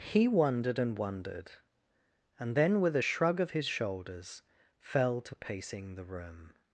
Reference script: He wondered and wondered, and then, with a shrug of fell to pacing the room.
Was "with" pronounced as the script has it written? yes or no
yes